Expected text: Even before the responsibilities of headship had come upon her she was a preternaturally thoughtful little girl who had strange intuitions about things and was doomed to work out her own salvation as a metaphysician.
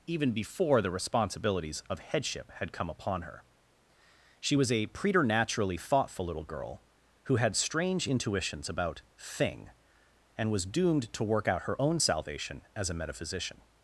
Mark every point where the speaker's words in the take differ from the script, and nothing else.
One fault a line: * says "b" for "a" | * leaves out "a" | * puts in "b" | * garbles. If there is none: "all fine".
* says "thing" for "things"